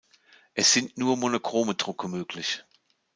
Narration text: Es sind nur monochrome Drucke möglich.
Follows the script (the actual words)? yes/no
yes